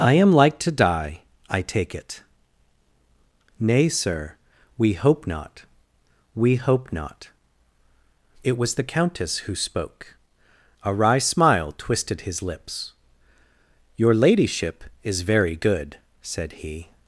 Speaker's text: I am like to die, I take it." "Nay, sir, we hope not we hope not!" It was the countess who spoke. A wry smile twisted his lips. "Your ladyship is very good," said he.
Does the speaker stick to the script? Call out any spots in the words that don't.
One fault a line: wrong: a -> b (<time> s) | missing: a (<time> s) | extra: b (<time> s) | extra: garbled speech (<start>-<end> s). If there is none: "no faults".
no faults